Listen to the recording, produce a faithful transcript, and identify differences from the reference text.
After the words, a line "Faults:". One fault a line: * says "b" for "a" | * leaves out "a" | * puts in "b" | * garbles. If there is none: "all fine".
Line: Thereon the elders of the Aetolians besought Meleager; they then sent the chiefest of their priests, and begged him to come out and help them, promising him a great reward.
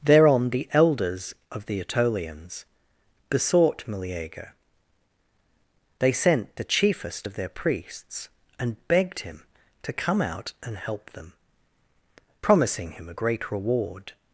Thereon the elders of the Aetolians besought Meleager; they sent the chiefest of their priests, and begged him to come out and help them, promising him a great reward.
Faults:
* leaves out "then"